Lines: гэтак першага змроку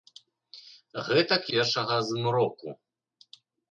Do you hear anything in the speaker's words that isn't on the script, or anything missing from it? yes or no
no